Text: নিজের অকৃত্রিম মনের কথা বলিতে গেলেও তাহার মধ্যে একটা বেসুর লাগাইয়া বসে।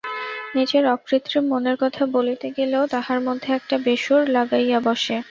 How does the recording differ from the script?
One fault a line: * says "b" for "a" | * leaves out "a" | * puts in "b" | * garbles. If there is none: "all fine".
all fine